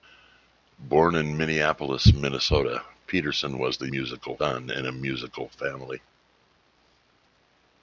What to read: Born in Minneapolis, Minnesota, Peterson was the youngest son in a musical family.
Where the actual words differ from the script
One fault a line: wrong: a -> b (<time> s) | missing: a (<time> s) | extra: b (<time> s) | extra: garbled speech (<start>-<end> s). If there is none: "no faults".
wrong: youngest -> musical (3.9 s)